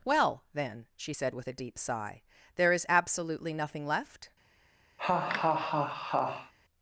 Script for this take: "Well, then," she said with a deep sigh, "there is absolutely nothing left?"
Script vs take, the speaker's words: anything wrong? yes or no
no